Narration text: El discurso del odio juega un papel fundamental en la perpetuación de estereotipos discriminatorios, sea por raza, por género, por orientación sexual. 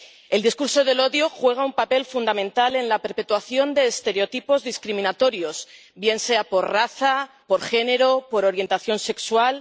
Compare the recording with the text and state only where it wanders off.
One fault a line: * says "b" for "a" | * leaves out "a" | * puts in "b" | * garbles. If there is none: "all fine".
* puts in "bien"